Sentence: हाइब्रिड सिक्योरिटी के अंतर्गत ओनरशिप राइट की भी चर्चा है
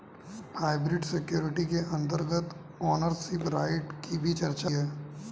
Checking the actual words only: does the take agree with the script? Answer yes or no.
yes